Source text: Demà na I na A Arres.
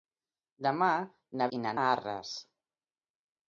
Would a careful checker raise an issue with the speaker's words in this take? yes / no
no